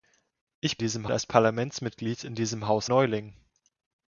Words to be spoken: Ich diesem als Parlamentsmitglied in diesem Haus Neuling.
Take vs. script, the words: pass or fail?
pass